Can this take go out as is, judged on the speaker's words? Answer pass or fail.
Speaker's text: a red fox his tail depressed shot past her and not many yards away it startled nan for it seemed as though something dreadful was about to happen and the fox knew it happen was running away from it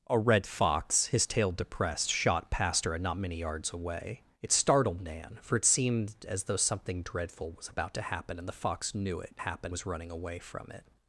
pass